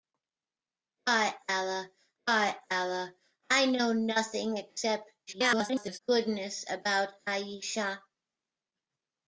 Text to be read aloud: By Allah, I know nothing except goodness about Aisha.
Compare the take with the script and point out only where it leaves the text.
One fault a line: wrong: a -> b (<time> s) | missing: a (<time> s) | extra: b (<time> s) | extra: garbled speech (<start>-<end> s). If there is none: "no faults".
extra: by Allah (2.3 s)
extra: garbled speech (5.3-6.0 s)